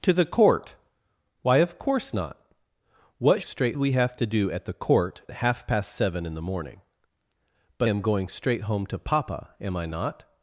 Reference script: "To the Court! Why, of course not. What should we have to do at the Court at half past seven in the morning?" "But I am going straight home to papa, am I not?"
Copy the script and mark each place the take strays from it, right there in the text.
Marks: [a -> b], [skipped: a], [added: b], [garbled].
"To the Court! Why, of course not. What [should -> straight] we have to do at the Court [skipped: at] half past seven in the morning?" "But [skipped: I] am going straight home to papa, am I not?"